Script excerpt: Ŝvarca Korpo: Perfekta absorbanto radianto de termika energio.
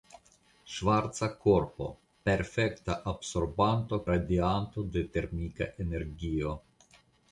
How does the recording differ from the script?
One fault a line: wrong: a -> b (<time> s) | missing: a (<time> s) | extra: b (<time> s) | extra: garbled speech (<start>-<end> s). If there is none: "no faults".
no faults